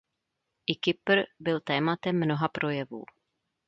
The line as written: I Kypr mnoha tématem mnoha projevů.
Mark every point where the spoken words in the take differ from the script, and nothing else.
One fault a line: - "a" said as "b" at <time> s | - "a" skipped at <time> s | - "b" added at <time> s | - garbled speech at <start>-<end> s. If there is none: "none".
- "mnoha" said as "byl" at 1.4 s